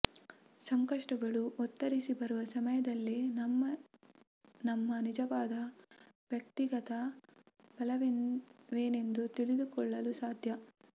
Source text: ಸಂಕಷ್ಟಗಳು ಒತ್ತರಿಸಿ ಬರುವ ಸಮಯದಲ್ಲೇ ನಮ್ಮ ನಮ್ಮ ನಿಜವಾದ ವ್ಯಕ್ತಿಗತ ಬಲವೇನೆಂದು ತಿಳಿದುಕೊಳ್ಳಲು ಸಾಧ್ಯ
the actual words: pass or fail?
pass